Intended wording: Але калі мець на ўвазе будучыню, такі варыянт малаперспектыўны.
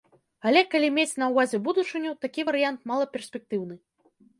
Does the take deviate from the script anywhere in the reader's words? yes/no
no